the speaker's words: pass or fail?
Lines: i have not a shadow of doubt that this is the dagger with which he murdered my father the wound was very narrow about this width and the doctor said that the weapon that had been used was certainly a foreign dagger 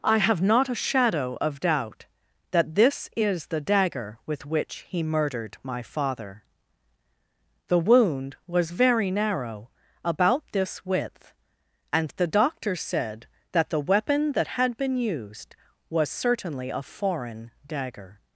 pass